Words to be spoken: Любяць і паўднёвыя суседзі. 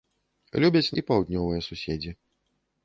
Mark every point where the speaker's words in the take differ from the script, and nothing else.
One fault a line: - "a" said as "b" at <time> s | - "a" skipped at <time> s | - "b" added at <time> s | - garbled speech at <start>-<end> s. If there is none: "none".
none